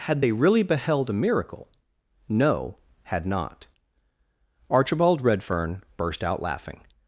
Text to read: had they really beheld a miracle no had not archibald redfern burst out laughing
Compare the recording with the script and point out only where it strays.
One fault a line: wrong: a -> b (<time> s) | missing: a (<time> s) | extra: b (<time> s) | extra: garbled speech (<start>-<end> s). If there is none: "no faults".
no faults